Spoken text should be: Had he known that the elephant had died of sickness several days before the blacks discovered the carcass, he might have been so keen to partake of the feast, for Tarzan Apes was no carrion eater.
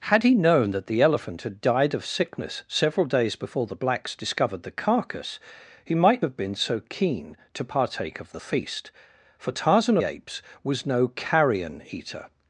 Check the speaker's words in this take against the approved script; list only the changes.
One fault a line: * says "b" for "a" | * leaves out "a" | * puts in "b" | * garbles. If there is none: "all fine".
all fine